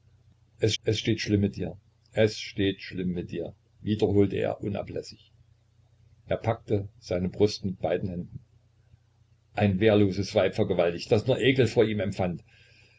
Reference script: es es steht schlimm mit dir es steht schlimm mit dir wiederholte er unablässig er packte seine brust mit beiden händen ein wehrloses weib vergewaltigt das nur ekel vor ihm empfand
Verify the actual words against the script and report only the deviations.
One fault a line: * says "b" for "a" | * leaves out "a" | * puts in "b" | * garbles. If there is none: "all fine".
all fine